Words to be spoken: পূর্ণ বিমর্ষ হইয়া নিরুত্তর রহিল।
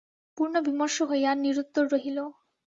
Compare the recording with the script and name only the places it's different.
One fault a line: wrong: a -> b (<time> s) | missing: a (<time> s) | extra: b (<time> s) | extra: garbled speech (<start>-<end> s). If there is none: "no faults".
no faults